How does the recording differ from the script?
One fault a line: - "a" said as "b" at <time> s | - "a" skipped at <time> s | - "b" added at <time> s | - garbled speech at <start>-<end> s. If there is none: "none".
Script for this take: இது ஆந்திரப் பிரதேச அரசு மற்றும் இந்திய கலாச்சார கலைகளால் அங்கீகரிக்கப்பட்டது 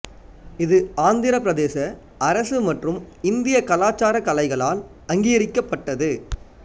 none